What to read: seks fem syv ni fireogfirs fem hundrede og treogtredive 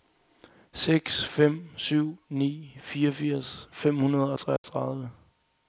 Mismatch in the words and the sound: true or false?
true